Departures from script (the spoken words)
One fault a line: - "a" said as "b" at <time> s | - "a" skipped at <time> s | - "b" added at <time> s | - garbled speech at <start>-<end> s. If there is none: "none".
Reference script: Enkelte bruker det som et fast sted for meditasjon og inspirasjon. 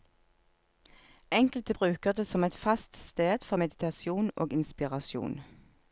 none